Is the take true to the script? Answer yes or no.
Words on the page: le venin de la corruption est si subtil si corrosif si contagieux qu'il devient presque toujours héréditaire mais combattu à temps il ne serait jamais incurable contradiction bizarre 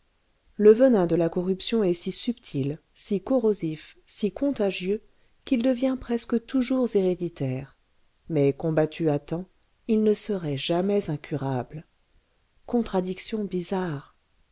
yes